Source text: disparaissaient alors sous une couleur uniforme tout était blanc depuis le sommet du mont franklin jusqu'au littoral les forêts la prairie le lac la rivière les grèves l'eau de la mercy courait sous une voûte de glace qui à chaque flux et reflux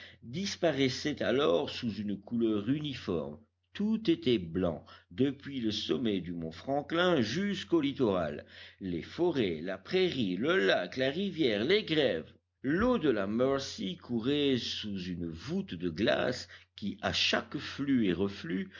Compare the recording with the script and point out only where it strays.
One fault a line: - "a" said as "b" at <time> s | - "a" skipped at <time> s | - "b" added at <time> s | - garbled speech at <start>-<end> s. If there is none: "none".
none